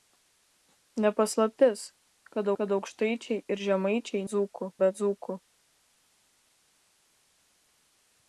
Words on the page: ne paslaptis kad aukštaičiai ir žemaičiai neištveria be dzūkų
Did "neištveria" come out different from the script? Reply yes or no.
yes